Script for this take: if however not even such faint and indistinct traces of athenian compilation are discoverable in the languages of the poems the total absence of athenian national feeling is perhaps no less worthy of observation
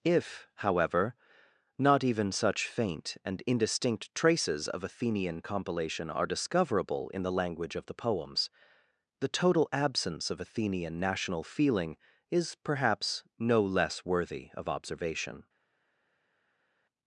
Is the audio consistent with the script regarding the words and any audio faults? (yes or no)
no